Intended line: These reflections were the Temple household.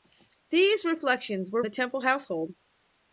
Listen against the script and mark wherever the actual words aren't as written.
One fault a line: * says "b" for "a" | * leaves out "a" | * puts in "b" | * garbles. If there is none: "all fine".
all fine